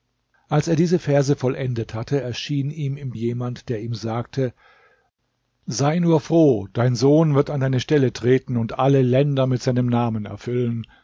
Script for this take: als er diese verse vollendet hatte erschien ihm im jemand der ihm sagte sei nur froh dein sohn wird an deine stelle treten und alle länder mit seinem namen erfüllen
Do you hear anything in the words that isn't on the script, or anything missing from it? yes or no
no